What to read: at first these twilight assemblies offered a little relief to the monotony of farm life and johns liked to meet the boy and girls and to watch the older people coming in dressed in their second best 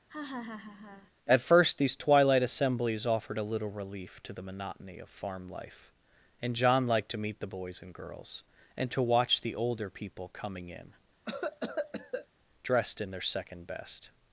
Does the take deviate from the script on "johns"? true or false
true